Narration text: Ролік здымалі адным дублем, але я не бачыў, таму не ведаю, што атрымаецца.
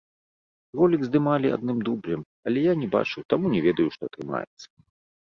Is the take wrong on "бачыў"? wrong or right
right